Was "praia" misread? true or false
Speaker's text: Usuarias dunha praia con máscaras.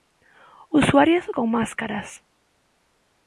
true